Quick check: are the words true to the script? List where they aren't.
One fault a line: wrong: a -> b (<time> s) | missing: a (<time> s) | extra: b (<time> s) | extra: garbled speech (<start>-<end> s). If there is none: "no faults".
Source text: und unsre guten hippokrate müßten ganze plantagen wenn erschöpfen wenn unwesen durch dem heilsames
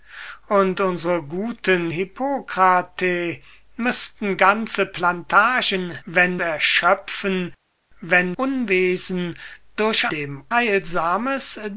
no faults